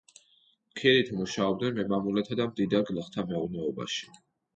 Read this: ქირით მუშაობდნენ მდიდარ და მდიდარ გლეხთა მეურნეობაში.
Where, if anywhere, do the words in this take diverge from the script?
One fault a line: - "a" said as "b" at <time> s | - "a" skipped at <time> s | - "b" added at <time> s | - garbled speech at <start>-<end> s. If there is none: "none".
- "მდიდარ" said as "მემამულეთა" at 1.8 s